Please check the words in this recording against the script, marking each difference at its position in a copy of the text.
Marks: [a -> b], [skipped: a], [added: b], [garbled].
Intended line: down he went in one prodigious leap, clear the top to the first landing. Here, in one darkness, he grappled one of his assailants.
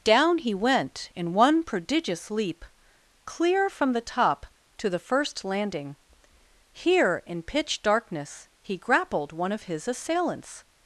down he went in one prodigious leap, clear [added: from] the top to the first landing. Here, in [one -> pitch] darkness, he grappled one of his assailants.